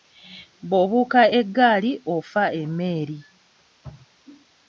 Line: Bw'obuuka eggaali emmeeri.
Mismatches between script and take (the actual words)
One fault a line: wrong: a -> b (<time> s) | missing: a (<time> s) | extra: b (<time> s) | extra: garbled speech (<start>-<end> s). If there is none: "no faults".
extra: ofa (2.2 s)